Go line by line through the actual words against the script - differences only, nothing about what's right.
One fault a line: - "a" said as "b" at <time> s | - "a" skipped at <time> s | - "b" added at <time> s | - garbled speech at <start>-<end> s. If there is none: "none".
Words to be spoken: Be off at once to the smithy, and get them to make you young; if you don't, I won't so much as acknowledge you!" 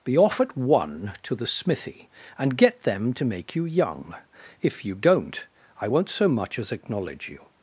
- "once" said as "one" at 0.6 s